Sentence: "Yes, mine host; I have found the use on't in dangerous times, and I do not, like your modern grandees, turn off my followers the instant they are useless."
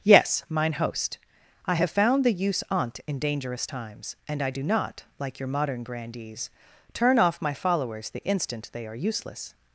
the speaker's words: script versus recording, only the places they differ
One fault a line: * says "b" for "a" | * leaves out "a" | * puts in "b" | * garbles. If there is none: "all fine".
all fine